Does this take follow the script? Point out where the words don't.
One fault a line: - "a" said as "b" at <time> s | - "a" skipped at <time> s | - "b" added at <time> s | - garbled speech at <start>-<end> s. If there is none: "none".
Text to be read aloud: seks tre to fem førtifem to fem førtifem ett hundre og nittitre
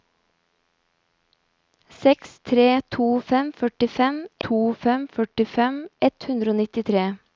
none